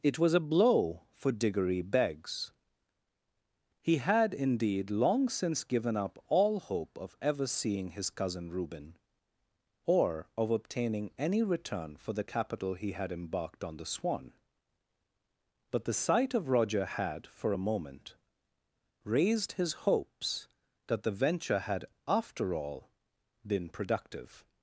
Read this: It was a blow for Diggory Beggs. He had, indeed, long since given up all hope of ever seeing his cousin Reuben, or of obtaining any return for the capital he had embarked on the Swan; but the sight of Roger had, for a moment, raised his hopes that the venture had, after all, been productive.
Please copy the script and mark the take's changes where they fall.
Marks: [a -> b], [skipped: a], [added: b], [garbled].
It was a blow for Diggory Beggs. He had, indeed, long since given up all hope of ever seeing his cousin Reuben, or of obtaining any return for the capital he had embarked on the Swan; but the sight of Roger had, for a moment, raised his hopes that the venture had, after all, been productive.